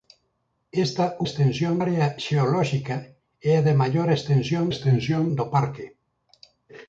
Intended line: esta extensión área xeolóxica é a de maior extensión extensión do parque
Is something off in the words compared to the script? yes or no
no